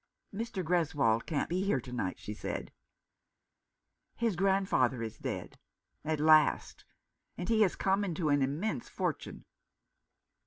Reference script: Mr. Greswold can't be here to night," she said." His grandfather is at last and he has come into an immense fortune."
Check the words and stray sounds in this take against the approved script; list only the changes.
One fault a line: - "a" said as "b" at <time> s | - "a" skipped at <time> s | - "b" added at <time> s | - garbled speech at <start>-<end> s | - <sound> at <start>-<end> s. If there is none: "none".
- "dead" added at 5.2 s